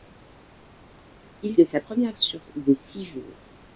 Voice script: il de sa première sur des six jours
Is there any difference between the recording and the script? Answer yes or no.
no